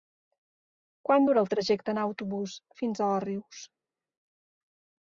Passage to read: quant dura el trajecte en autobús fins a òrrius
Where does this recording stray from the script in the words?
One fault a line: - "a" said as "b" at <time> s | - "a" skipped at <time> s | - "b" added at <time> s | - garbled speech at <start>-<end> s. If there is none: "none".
none